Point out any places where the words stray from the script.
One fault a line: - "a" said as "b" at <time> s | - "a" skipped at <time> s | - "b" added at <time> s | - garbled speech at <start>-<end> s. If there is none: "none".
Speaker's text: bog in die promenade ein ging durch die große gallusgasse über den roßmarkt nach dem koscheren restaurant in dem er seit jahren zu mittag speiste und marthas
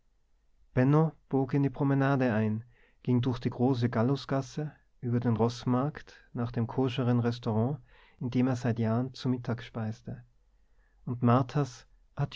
none